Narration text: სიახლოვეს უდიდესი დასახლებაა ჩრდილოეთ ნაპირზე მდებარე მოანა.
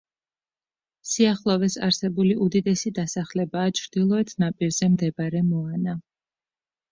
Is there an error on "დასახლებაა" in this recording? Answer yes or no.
no